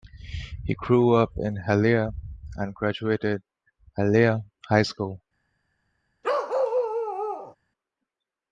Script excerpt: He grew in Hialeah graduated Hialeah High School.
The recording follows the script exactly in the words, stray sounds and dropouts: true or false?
false